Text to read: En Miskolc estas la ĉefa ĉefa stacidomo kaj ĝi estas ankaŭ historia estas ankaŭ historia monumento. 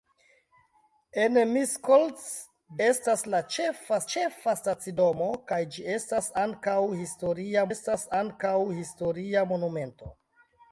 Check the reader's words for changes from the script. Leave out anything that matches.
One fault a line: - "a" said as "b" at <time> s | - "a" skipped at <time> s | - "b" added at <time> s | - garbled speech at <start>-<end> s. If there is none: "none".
none